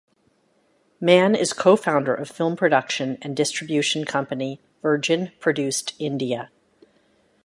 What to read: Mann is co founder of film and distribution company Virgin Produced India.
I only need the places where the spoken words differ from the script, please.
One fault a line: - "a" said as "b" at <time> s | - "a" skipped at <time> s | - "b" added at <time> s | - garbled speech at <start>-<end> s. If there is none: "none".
- "production" added at 2.5 s